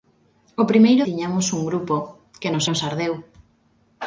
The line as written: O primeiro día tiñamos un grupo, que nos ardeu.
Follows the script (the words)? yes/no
no